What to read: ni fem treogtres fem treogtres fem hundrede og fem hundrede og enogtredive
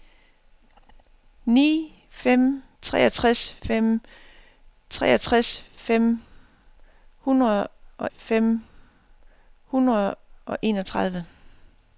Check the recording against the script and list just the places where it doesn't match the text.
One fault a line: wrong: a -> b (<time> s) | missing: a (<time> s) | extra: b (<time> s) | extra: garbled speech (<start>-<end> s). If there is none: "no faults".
no faults